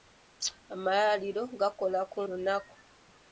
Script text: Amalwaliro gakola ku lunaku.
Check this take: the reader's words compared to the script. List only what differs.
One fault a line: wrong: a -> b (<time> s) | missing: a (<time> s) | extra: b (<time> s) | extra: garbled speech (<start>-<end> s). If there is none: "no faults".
no faults